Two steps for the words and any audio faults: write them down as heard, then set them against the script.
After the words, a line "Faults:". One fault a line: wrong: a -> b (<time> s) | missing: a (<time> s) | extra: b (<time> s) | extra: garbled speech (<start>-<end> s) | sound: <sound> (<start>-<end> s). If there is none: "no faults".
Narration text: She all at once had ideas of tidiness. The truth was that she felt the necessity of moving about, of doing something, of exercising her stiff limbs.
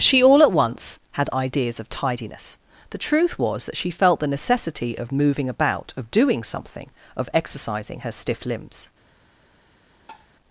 She all at once had ideas of tidiness. The truth was that she felt the necessity of moving about, of doing something, of exercising her stiff limbs.
Faults:
sound: tap (10.1-10.3 s)